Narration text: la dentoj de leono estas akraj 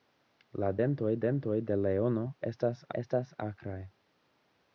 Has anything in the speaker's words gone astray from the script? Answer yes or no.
yes